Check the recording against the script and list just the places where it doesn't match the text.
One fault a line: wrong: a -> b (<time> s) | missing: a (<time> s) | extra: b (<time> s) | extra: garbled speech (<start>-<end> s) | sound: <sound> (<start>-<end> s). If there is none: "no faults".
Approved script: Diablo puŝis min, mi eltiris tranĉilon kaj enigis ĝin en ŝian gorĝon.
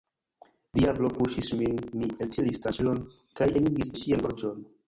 missing: ĝin (4.0 s)